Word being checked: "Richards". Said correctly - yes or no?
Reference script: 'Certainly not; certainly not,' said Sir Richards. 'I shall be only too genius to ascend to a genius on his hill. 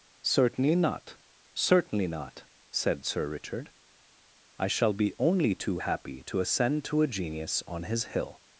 no